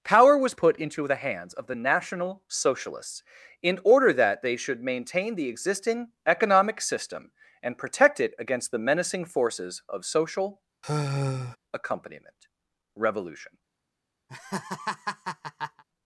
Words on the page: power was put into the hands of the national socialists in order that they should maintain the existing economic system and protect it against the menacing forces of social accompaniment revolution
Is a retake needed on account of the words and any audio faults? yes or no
yes